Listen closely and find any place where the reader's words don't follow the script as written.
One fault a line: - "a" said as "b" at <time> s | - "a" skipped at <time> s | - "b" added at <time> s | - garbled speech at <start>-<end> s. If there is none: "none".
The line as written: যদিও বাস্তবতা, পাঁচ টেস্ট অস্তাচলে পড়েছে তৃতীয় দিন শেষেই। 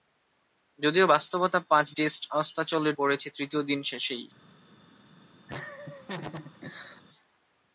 none